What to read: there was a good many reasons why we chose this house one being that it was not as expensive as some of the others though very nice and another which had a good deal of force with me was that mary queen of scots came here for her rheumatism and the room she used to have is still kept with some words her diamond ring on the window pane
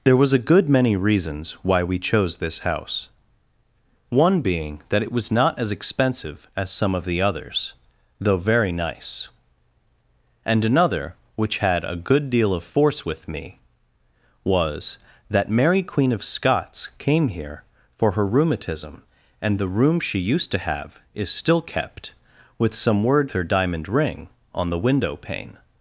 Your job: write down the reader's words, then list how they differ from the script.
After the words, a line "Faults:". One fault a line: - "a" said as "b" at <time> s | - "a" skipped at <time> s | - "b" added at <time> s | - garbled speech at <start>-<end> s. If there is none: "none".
there was a good many reasons why we chose this house one being that it was not as expensive as some of the others though very nice and another which had a good deal of force with me was that mary queen of scots came here for her rheumatism and the room she used to have is still kept with some words her diamond ring on the window pane
Faults:
none